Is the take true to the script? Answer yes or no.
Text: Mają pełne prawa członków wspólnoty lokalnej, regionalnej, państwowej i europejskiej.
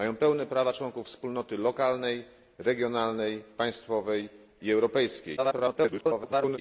no